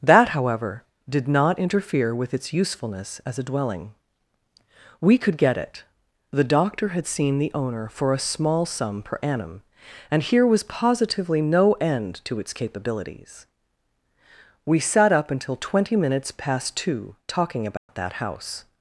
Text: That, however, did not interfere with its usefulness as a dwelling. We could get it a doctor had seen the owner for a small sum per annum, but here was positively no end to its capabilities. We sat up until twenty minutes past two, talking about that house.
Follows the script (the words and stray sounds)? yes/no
no